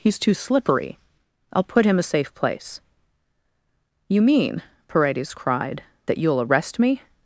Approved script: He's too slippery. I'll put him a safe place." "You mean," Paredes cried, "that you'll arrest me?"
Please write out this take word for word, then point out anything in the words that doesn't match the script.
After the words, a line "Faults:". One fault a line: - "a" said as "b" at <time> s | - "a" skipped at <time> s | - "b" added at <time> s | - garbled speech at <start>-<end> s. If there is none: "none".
He's too slippery. I'll put him a safe place." "You mean," Paredes cried, "that you'll arrest me?"
Faults:
none